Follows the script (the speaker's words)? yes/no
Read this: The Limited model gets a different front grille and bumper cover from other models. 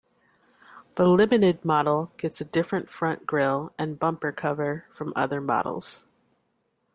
yes